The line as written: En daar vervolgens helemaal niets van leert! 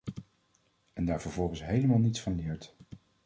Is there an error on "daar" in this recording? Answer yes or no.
no